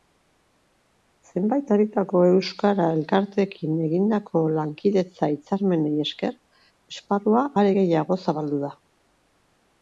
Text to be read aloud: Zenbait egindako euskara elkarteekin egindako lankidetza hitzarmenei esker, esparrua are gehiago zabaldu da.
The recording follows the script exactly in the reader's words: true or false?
false